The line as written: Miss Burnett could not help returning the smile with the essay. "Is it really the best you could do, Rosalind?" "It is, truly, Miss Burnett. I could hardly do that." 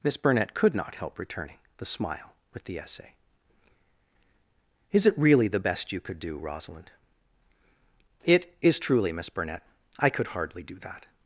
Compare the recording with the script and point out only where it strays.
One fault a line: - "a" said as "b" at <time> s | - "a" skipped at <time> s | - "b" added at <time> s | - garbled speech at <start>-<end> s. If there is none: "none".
none